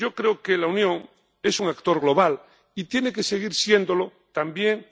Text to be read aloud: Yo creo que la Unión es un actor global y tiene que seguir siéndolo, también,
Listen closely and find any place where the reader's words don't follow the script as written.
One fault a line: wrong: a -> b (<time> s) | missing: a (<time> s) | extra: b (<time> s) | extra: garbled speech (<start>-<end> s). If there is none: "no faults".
no faults